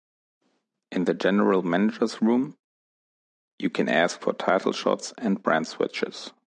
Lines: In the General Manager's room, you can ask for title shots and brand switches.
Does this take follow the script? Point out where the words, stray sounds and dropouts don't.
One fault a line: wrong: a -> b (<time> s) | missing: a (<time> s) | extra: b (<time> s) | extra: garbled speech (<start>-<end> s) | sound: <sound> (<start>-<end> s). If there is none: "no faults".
no faults